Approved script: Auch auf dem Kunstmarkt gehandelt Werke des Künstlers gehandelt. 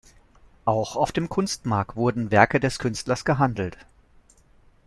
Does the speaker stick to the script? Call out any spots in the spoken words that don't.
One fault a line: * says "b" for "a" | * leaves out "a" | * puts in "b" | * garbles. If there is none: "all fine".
* says "wurden" for "gehandelt"